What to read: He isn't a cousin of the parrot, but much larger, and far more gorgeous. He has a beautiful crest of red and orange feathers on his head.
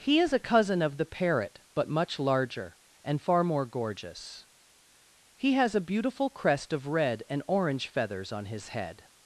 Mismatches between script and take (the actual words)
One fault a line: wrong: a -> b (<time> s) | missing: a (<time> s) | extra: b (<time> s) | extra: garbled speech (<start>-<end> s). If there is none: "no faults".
wrong: isn't -> is (0.2 s)